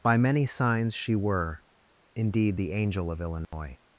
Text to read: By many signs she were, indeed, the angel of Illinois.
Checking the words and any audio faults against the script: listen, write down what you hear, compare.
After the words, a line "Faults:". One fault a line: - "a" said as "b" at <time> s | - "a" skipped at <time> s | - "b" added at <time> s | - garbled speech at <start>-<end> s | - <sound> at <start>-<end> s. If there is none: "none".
By many signs she were, indeed, the angel of Illinois.
Faults:
- dropout at 3.4-3.5 s